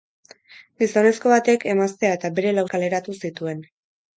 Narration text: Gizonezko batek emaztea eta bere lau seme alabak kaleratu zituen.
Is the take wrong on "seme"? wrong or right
wrong